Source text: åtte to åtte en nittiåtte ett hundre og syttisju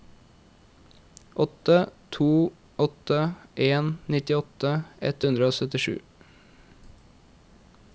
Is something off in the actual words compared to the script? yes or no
no